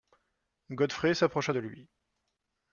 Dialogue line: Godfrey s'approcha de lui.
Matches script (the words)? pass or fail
pass